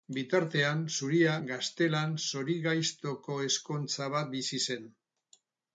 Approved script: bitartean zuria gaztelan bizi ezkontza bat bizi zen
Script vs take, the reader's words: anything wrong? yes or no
yes